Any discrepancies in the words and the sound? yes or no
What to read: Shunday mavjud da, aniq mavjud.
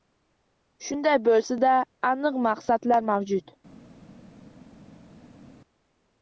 yes